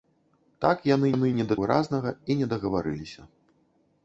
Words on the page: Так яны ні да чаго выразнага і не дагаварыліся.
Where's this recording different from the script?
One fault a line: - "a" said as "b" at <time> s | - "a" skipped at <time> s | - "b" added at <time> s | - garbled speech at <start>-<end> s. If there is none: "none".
- "яны" added at 1.1 s
- "чаго" skipped at 1.6 s